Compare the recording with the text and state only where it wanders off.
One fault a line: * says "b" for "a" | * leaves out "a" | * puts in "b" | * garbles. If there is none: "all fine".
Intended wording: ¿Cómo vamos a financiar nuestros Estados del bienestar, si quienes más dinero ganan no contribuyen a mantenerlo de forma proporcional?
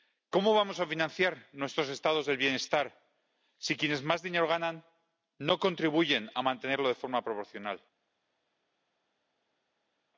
all fine